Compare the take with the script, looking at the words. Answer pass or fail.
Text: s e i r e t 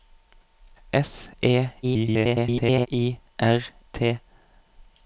fail